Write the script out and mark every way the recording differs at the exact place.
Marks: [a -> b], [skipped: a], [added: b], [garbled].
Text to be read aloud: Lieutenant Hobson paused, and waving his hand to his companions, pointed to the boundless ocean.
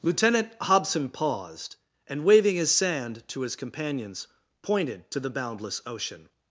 Lieutenant Hobson paused, and waving his [hand -> sand] to his companions, pointed to the boundless ocean.